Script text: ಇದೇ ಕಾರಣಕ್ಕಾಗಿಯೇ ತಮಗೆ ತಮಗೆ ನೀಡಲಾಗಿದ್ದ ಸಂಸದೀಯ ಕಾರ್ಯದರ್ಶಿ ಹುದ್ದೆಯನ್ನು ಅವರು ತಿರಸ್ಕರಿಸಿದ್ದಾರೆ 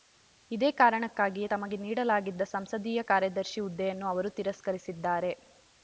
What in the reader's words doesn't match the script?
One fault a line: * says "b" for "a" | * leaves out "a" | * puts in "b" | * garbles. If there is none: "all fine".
* leaves out "ತಮಗೆ"